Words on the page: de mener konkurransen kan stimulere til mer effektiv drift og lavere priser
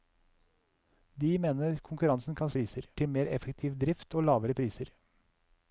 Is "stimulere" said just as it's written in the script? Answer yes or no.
no